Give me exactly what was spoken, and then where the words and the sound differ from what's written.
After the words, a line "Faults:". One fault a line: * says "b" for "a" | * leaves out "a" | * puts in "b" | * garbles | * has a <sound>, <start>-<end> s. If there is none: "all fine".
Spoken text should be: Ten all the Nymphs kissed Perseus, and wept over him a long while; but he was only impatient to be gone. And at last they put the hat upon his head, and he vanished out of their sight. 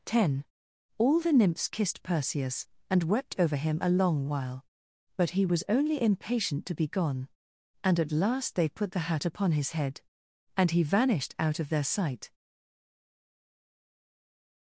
Ten all the Nymphs kissed Perseus, and wept over him a long while; but he was only impatient to be gone. And at last they put the hat upon his head, and he vanished out of their sight.
Faults:
all fine